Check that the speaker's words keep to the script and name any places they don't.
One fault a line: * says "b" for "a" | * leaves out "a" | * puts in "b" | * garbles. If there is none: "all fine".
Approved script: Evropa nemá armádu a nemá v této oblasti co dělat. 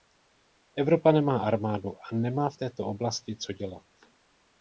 all fine